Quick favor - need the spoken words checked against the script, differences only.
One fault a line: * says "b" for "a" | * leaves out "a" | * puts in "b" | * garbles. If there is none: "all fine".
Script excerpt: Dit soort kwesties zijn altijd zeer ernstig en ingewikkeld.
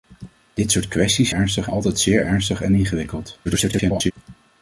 * says "ernstig" for "zijn"
* garbles